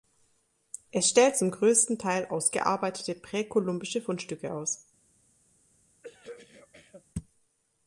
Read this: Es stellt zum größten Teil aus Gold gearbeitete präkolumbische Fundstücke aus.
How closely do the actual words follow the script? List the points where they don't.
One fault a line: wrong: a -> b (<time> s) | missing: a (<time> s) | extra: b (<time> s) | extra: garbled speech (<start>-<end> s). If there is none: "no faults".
missing: Gold (2.5 s)